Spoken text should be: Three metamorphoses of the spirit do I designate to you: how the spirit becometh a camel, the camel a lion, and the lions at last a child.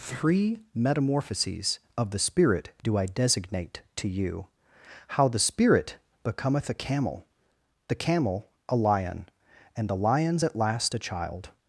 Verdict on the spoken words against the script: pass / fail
pass